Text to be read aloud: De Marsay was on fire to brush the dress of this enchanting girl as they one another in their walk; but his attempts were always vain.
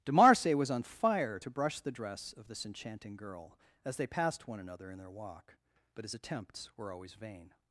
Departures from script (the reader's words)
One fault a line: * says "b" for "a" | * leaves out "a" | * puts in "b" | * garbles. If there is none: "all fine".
* puts in "passed"